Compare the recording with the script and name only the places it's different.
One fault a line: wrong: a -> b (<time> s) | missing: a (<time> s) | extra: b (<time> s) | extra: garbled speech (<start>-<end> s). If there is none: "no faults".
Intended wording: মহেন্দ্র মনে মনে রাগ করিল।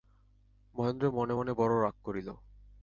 extra: বড়ো (1.5 s)